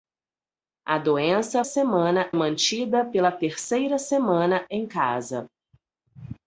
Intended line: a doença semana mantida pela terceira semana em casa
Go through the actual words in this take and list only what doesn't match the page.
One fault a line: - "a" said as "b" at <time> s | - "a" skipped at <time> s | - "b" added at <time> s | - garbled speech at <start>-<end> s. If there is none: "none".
none